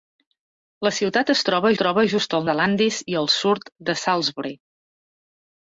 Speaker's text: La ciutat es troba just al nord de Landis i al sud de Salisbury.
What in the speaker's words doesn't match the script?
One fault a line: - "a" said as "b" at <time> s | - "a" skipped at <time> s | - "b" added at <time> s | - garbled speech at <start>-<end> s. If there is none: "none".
- "troba" added at 1.8 s
- "nord" skipped at 2.5 s